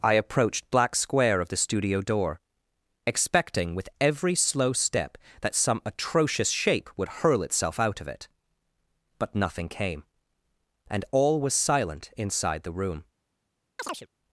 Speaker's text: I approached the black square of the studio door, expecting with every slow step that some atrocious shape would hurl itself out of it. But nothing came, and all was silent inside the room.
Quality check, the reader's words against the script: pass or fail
fail